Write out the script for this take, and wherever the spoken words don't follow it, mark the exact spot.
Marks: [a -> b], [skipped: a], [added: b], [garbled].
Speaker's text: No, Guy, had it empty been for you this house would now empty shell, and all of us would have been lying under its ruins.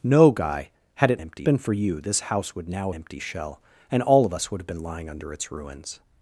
No, Guy, had it empty been for you this house would now empty shell, and all of us would have been lying under its ruins.